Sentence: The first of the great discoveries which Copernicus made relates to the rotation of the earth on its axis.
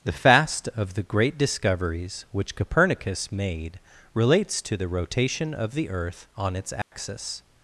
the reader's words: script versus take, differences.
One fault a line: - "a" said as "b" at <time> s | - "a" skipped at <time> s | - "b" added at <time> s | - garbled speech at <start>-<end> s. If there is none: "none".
- "first" said as "fast" at 0.1 s